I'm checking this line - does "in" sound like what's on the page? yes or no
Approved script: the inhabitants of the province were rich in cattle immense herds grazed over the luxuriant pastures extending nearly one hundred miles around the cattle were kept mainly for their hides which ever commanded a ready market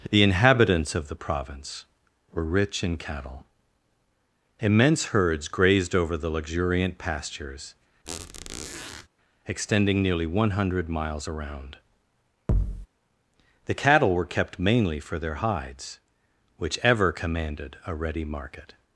yes